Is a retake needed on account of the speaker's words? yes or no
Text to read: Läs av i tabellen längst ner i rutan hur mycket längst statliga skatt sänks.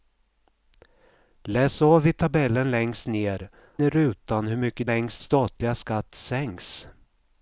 no